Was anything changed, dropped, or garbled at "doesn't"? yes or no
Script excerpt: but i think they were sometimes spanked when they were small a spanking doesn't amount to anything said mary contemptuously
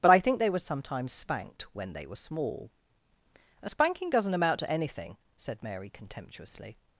no